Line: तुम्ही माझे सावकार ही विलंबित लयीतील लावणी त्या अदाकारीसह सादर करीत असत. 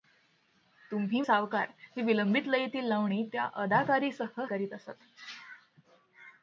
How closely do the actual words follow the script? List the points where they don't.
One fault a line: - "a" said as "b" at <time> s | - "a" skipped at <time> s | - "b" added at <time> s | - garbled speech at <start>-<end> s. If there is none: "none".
- "माझे" skipped at 1.2 s
- "सादर" skipped at 4.4 s